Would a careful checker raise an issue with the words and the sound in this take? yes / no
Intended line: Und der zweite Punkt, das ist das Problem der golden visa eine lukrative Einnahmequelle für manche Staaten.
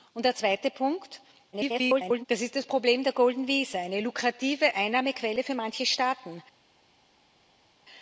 yes